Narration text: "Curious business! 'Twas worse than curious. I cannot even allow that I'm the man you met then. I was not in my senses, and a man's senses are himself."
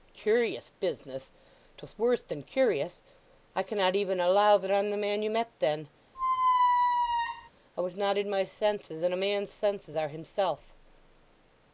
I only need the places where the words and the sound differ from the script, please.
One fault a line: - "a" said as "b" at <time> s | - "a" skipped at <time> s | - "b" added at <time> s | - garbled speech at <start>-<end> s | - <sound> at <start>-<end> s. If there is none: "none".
- squeak at 6.1-7.5 s